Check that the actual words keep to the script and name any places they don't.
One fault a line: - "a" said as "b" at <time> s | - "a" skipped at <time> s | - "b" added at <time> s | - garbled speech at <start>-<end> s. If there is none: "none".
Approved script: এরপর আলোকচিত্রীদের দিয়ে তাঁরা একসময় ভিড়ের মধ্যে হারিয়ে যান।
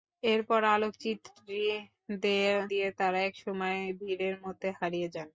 none